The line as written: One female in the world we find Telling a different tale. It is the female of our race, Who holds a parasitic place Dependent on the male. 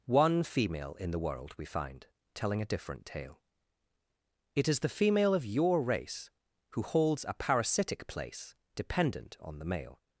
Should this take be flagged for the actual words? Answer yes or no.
yes